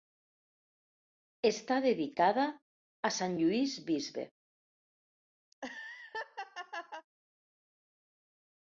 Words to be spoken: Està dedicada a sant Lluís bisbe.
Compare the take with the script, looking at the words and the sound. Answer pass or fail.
fail